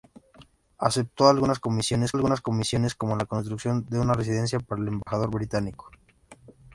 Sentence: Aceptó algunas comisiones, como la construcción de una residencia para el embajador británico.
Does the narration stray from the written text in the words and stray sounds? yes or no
yes